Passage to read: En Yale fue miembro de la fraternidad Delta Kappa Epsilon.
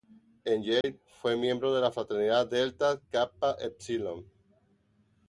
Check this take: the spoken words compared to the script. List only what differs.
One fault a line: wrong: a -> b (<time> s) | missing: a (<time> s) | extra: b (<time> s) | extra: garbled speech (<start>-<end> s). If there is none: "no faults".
no faults